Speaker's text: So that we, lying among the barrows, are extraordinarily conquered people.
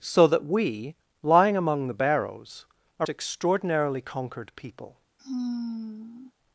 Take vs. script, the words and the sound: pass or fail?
fail